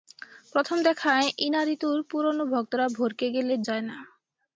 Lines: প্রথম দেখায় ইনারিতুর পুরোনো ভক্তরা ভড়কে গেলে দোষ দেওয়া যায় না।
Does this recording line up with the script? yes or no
no